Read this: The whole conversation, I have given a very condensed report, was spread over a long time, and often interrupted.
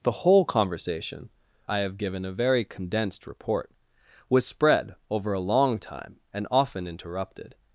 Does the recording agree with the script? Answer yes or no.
yes